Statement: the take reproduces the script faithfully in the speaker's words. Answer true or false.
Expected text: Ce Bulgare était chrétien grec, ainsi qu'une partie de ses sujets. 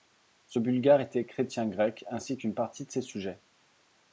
true